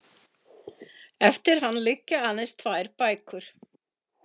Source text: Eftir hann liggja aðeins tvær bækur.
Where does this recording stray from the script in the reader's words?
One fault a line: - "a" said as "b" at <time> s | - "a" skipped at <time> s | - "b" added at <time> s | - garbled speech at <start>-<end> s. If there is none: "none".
none